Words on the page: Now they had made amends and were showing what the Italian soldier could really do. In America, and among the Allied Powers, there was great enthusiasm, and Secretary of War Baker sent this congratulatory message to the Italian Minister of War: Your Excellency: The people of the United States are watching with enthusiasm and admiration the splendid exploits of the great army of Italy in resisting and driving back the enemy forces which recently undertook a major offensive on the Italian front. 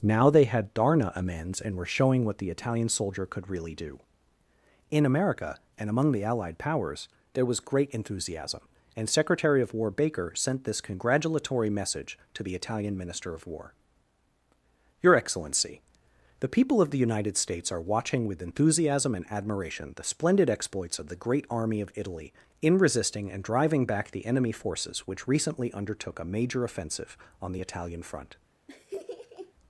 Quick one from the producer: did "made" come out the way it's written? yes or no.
no